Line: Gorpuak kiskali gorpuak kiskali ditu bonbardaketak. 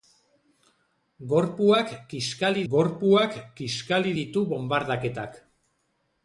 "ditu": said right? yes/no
yes